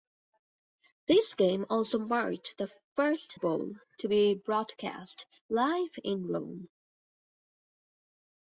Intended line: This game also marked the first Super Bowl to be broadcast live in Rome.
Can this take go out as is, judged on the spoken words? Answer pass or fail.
fail